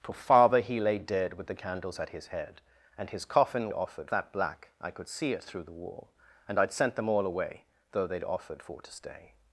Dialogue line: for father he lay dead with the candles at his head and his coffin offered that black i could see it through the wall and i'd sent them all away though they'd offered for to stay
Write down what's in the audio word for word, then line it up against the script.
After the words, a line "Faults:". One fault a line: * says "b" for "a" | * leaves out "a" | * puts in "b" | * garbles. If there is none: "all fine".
for father he lay dead with the candles at his head and his coffin offered that black i could see it through the wall and i'd sent them all away though they'd offered for to stay
Faults:
all fine